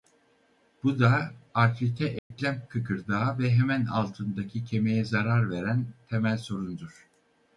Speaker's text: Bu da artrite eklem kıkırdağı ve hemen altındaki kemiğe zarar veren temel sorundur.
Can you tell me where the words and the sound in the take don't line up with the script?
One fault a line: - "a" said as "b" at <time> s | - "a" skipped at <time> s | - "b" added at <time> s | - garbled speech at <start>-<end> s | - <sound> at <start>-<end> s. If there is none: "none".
- dropout at 2.2-2.3 s